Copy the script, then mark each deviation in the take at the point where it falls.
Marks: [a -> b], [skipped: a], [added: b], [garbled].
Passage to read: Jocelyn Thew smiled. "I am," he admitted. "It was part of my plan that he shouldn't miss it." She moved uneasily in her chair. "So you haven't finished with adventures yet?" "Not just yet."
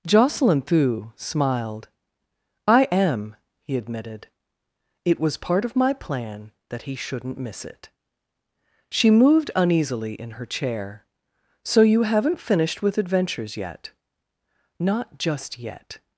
Jocelyn Thew smiled. "I am," he admitted. "It was part of my plan that he shouldn't miss it." She moved uneasily in her chair. "So you haven't finished with adventures yet?" "Not just yet."